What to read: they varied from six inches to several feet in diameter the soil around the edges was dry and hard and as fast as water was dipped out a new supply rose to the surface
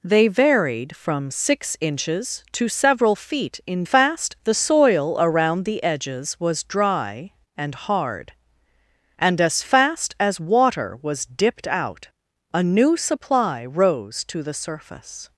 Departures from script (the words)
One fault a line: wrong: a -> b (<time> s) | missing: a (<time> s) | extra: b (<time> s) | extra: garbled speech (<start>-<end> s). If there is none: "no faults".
wrong: diameter -> fast (3.8 s)